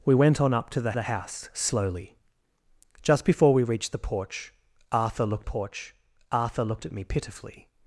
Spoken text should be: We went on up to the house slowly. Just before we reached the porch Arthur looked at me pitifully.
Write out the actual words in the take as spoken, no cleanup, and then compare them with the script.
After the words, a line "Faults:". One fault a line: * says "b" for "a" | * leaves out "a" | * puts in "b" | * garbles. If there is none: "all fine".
We went on up to the the house slowly. Just before we reached the porch Arthur looked porch Arthur looked at me pitifully.
Faults:
* puts in "the"
* puts in "porch Arthur looked"